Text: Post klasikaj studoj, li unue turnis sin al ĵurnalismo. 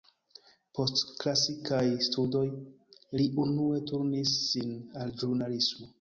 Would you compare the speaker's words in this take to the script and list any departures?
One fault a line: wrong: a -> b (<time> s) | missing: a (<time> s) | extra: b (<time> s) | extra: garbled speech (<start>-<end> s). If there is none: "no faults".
no faults